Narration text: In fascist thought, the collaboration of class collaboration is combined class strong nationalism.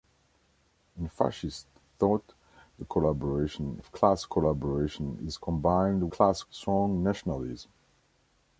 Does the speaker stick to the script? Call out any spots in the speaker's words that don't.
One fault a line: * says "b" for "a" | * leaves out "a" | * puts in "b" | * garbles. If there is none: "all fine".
all fine